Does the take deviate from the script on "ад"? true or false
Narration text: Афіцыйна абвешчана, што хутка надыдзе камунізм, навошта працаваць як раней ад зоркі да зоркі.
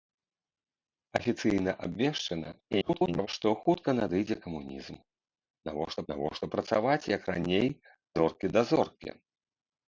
true